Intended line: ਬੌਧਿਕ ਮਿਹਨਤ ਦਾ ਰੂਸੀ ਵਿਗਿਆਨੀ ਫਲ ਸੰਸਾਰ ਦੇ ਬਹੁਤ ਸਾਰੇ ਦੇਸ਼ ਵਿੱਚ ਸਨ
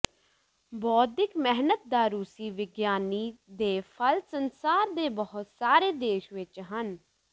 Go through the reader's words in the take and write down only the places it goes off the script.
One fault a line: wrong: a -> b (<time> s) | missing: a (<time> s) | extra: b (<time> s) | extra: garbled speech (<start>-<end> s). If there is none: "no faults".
extra: ਦੇ (3.6 s)
wrong: ਸਨ -> ਹਨ (6.7 s)